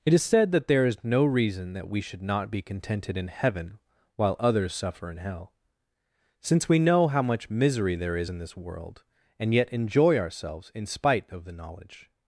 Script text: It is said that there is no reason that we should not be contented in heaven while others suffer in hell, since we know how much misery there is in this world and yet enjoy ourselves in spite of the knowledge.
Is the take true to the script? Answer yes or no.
yes